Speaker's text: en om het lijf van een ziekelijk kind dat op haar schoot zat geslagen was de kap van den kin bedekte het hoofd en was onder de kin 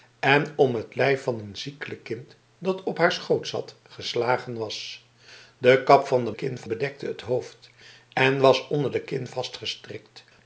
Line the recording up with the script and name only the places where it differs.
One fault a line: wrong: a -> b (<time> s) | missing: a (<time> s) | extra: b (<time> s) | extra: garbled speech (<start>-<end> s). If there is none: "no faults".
no faults